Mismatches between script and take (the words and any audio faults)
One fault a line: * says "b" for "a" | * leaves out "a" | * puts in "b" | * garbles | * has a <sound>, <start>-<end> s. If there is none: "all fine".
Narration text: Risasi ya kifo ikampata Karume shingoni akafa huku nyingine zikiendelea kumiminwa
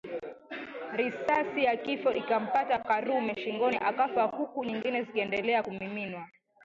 all fine